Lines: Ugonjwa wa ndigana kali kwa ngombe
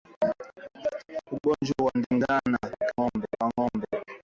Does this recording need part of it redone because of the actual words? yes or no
yes